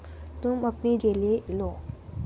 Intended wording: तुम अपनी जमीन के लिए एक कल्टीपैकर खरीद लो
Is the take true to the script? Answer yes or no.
no